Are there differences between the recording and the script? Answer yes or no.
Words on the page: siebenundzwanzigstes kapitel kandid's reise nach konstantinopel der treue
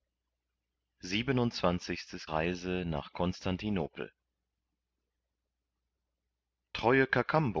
yes